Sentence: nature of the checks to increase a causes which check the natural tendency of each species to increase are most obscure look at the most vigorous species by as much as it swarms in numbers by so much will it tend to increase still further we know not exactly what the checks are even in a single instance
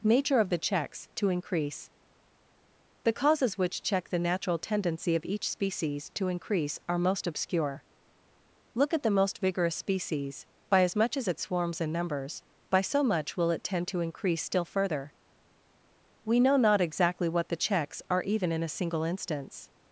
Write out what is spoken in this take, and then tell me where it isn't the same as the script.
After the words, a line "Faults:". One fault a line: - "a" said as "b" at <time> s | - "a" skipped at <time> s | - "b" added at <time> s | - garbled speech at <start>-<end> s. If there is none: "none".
nature of the checks to increase the causes which check the natural tendency of each species to increase are most obscure look at the most vigorous species by as much as it swarms in numbers by so much will it tend to increase still further we know not exactly what the checks are even in a single instance
Faults:
- "a" said as "the" at 3.0 s